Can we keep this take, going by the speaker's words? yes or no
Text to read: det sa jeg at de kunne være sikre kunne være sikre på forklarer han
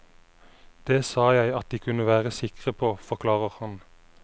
no